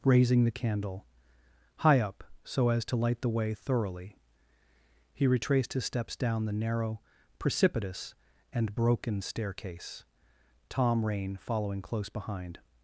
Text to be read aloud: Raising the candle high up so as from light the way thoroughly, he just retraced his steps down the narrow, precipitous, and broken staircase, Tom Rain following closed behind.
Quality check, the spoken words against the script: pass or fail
fail